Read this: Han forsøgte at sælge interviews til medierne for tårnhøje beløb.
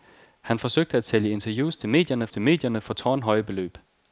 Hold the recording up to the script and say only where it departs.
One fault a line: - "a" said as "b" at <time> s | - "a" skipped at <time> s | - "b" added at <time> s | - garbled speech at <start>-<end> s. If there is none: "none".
- "til medierne" added at 2.3 s